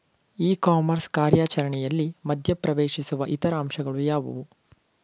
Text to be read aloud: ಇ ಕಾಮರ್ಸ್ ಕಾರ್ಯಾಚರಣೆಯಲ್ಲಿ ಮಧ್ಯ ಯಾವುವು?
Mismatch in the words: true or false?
true